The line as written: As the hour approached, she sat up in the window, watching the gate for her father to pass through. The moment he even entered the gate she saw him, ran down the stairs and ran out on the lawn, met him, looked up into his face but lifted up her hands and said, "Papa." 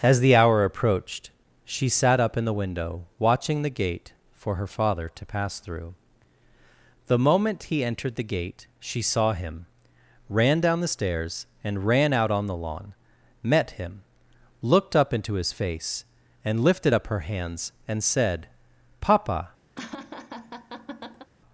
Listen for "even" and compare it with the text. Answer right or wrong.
wrong